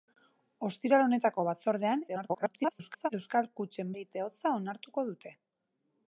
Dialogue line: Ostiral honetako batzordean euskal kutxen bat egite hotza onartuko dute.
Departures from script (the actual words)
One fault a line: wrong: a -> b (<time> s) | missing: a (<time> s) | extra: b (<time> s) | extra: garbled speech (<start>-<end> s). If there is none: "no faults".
extra: garbled speech (2.1-3.1 s)
missing: bat (3.9 s)